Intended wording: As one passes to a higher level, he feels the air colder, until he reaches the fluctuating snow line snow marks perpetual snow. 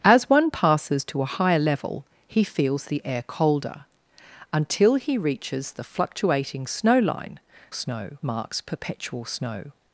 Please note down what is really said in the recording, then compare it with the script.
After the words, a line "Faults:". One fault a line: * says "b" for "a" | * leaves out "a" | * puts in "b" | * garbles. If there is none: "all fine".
As one passes to a higher level, he feels the air colder, until he reaches the fluctuating snow line snow marks perpetual snow.
Faults:
all fine